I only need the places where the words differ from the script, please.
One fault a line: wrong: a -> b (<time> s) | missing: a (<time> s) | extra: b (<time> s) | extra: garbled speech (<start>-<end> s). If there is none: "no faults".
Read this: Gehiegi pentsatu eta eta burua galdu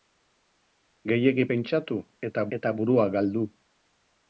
no faults